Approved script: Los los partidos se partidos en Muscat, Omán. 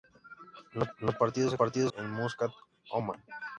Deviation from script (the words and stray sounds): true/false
false